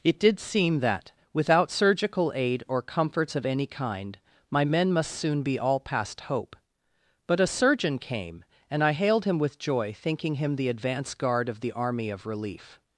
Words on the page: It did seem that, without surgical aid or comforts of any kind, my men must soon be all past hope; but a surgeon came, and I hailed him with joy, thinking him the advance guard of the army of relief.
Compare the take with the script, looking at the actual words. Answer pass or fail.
pass